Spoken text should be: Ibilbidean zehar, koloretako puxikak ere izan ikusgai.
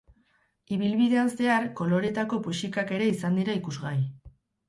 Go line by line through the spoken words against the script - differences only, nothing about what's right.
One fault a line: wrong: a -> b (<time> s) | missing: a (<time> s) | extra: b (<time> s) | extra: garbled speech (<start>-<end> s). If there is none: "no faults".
extra: dira (3.4 s)